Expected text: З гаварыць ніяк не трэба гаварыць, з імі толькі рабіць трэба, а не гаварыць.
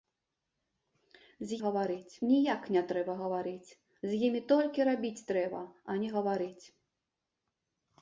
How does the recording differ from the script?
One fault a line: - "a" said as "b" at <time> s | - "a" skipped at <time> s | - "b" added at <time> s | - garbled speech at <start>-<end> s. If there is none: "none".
none